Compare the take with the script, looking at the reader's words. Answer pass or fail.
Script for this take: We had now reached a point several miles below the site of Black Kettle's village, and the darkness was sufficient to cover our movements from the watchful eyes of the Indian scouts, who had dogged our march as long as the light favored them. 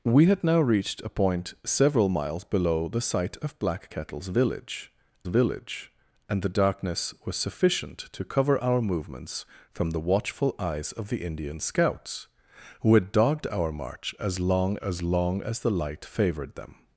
fail